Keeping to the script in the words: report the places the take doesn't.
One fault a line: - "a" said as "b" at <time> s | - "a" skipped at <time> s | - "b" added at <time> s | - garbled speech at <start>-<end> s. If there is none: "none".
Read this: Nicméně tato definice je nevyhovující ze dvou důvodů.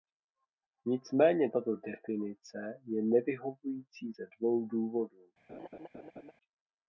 none